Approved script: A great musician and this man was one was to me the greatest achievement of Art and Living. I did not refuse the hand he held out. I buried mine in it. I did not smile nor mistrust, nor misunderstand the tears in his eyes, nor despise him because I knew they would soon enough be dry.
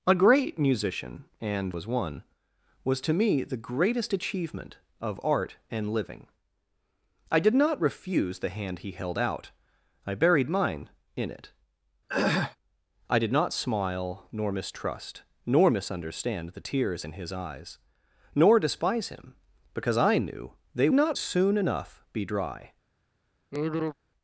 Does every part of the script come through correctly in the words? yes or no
no